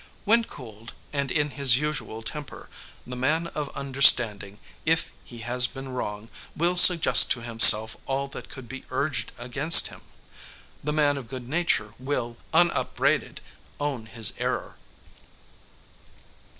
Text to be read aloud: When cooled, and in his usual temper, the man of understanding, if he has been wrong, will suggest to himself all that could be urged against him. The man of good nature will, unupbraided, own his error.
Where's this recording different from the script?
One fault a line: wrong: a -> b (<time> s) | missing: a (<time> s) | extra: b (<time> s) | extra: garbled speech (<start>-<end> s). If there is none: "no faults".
no faults